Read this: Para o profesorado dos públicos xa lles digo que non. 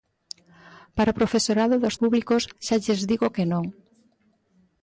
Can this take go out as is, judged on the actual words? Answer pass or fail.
pass